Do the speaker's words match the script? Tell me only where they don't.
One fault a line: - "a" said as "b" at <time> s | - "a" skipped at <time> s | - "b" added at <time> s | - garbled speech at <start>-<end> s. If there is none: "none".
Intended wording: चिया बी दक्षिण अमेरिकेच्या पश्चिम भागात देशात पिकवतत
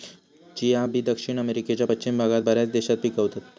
- "बऱ्याच" added at 2.4 s